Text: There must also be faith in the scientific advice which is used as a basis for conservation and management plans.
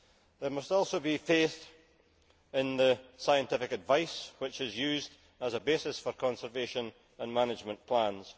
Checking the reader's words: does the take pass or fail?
pass